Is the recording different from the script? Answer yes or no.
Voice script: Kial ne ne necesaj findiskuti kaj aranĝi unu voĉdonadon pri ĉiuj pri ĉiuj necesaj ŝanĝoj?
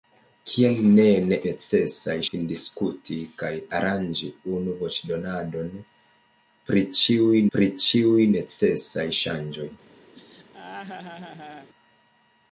no